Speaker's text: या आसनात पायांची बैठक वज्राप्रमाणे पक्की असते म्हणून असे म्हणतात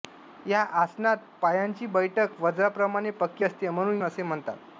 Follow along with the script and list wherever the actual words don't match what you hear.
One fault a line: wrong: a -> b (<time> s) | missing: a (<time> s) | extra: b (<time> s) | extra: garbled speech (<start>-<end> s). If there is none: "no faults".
no faults